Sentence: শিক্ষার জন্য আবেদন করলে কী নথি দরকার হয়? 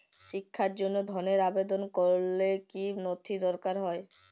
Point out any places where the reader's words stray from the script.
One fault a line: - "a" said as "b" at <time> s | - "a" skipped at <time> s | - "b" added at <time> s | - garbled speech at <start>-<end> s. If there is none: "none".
- "ধনের" added at 1.1 s